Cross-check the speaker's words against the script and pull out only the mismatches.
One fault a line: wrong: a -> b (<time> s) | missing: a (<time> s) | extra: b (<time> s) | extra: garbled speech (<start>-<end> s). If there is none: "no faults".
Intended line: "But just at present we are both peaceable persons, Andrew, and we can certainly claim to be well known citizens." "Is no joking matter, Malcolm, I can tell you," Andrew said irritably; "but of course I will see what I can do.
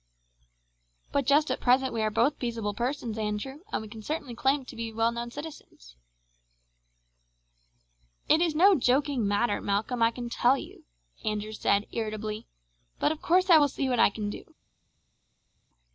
extra: It (8.3 s)